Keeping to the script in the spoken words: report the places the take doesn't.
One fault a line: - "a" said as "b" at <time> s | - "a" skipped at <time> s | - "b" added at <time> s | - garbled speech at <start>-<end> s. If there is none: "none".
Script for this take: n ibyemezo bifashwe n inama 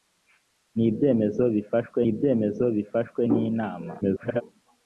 - "ibyemezo bifashwe" added at 2.1 s
- garbled speech at 4.0-4.4 s